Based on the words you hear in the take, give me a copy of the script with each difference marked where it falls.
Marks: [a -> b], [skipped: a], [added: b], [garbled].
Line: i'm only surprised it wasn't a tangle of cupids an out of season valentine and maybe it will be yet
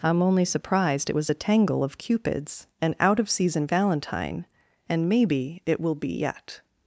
i'm only surprised it [wasn't -> was] a tangle of cupids an out of season valentine and maybe it will be yet